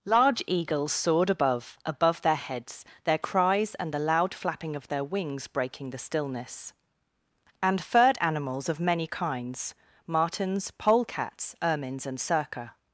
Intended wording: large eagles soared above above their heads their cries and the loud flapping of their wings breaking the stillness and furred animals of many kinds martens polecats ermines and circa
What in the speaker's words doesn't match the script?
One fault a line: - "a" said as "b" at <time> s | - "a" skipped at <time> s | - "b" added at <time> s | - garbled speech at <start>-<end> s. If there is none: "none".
none